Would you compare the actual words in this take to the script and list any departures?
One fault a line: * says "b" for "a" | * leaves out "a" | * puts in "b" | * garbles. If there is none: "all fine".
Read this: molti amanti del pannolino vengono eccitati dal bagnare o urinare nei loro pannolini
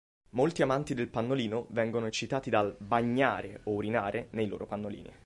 all fine